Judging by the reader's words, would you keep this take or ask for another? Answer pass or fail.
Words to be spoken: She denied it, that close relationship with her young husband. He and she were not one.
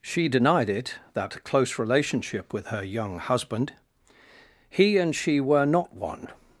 pass